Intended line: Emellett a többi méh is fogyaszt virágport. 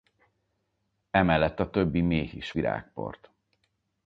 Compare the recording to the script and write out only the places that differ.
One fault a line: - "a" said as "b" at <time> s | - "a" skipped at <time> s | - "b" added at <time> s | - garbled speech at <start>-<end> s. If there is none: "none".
- "fogyaszt" skipped at 2.5 s